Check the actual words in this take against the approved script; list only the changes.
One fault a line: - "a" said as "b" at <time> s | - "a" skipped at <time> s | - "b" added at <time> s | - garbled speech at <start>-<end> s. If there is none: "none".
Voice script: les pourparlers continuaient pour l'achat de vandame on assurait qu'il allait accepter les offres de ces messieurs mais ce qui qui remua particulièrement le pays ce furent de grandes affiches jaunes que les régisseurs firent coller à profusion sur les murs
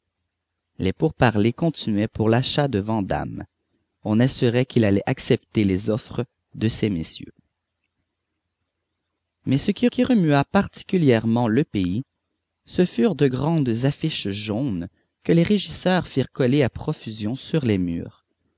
none